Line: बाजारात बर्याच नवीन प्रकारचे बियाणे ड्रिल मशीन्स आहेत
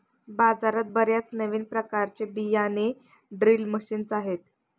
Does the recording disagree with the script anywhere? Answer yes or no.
no